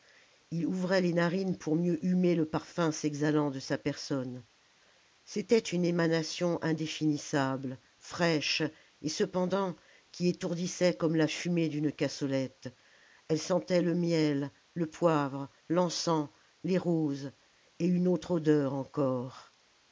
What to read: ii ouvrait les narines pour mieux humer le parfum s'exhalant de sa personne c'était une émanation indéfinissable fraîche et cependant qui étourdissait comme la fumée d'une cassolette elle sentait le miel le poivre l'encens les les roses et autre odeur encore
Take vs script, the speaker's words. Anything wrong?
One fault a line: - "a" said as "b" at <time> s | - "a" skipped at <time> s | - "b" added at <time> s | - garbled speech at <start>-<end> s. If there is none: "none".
- "les" skipped at 16.8 s
- "une" added at 17.9 s